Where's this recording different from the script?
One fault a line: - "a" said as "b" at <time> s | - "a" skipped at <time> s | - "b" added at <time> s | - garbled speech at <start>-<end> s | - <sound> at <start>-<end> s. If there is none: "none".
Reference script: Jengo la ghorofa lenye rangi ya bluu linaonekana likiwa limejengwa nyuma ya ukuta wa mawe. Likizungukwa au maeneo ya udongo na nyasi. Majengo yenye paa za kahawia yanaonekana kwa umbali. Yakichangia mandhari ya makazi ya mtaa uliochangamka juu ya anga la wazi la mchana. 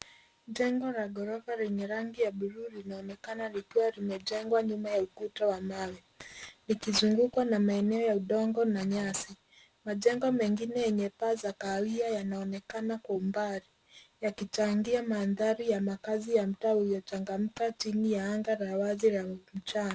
- "au" said as "na" at 7.5 s
- "mengine" added at 10.3 s
- "juu" said as "chini" at 17.7 s